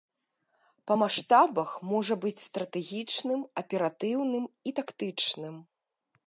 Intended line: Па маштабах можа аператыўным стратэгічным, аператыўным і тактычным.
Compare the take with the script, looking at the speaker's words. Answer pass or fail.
fail